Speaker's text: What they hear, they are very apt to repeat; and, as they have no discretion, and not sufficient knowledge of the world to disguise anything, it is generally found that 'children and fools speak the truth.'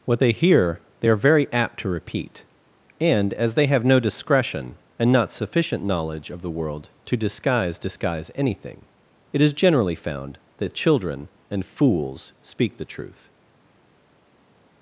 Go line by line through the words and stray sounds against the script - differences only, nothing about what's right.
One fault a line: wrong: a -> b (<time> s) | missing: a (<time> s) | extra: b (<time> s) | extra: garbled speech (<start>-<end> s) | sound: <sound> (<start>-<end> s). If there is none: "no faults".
extra: disguise (7.8 s)